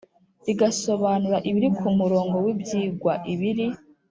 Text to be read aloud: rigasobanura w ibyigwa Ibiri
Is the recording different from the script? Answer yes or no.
yes